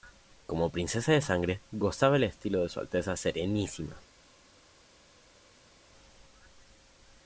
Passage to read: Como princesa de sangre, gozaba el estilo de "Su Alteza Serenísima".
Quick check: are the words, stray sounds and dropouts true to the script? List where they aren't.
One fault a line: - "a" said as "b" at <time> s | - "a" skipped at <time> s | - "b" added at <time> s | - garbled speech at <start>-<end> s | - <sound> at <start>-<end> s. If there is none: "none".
none